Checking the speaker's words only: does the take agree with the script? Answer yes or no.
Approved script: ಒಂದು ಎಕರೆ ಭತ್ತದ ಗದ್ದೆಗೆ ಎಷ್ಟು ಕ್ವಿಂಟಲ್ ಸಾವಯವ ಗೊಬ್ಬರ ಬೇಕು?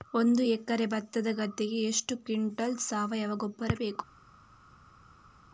yes